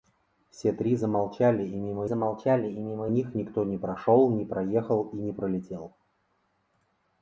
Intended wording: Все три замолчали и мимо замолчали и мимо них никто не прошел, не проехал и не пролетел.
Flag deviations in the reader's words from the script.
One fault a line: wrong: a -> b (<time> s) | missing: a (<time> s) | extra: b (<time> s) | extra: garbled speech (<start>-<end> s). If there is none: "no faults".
no faults